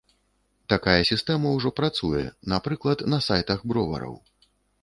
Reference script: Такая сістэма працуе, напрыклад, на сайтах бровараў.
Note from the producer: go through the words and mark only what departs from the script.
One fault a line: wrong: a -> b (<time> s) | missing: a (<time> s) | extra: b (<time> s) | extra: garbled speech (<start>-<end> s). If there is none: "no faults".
extra: ўжо (1.6 s)